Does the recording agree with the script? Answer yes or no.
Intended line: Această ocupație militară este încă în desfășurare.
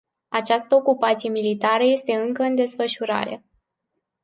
yes